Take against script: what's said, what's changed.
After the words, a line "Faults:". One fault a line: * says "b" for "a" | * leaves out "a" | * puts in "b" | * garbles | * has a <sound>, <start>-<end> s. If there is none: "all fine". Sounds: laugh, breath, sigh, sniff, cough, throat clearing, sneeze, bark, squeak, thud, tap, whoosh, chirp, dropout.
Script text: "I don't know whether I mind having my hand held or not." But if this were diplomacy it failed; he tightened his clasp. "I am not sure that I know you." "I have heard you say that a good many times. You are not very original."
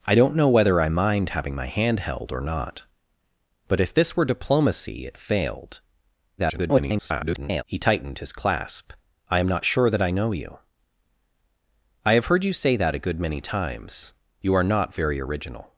"I don't know whether I mind having my hand held or not." But if this were diplomacy it failed; [garbled] he tightened his clasp. "I am not sure that I know you." "I have heard you say that a good many times. You are not very original."
Faults:
* garbles